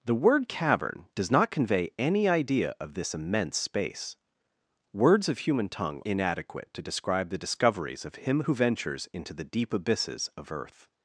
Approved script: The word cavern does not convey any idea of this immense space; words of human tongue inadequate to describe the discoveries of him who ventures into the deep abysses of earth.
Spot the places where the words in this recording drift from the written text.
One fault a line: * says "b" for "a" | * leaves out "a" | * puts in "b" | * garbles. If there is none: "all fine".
all fine